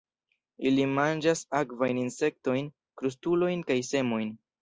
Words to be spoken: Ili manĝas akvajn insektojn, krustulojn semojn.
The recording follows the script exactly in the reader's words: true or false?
false